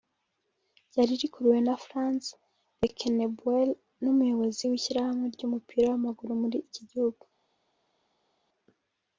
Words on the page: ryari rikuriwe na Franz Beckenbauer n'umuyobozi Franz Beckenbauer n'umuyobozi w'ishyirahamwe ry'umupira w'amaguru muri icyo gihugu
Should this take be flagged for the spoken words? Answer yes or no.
yes